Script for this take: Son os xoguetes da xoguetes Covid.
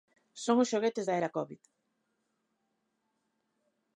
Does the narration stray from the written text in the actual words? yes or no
yes